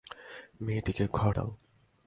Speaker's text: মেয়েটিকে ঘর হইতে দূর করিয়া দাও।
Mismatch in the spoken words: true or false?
true